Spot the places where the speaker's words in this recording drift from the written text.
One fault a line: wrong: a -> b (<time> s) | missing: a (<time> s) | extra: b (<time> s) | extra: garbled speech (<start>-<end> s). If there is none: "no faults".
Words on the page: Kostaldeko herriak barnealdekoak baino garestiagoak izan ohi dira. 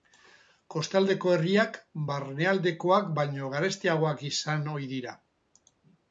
no faults